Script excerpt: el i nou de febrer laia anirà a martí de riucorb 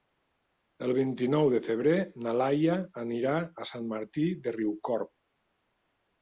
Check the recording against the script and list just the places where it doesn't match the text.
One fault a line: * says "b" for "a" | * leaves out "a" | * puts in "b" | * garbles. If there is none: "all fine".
* puts in "vint"
* puts in "na"
* puts in "sant"